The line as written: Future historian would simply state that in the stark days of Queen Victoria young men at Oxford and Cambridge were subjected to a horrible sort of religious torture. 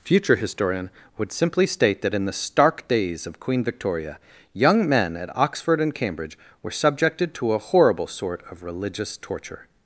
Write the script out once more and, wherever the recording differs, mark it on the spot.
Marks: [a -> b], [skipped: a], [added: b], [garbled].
Future historian would simply state that in the stark days of Queen Victoria young men at Oxford and Cambridge were subjected to a horrible sort of religious torture.